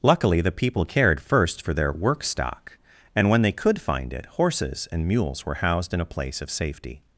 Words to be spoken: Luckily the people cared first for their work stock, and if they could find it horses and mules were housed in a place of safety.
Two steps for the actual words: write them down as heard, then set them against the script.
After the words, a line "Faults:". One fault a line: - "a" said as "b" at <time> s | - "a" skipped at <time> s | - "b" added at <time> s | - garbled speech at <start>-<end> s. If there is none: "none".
Luckily the people cared first for their work stock, and when they could find it horses and mules were housed in a place of safety.
Faults:
- "if" said as "when" at 3.3 s